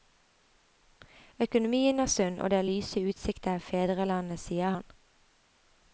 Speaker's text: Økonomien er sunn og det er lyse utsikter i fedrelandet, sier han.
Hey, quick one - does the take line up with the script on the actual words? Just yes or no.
yes